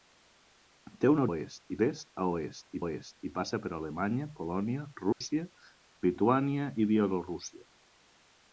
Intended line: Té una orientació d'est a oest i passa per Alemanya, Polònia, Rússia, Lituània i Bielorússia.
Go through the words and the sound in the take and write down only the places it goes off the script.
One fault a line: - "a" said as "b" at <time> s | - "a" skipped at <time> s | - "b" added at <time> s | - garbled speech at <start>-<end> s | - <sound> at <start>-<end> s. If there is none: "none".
- "orientació" said as "oest" at 1.3 s
- "oest" added at 2.8 s
- dropout at 5.1-5.2 s